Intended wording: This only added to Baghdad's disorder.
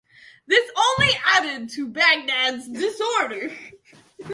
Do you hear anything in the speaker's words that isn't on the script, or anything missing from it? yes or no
no